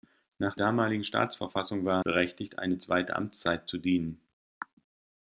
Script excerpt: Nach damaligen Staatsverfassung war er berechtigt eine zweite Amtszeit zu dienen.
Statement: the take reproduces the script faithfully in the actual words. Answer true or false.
true